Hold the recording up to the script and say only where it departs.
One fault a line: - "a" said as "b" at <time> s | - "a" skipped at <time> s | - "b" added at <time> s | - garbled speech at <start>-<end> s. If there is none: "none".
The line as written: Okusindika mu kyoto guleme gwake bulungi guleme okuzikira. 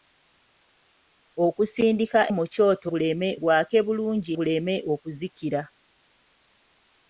none